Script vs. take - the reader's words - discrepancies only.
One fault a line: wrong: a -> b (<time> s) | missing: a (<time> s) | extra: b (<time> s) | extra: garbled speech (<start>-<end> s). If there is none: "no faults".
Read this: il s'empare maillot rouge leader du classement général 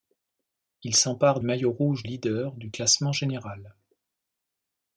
no faults